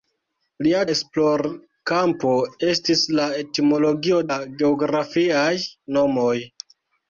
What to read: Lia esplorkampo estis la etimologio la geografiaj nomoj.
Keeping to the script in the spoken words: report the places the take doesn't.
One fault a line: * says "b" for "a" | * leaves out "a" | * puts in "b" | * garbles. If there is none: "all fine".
all fine